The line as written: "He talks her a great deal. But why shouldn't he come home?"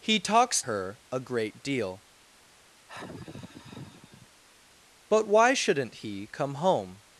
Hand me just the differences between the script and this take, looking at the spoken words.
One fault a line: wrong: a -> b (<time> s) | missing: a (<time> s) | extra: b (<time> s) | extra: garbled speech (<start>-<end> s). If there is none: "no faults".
no faults